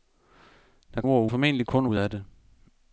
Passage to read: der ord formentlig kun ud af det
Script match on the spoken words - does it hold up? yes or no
yes